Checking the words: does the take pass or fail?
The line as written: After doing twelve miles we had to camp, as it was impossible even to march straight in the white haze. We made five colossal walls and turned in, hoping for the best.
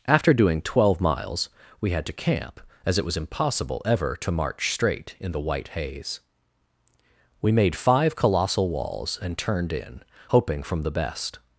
fail